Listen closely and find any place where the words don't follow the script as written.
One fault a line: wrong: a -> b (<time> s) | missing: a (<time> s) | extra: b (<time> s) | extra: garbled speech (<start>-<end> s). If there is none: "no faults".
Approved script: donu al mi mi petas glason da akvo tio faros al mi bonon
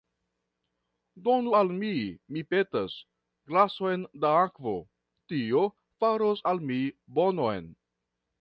no faults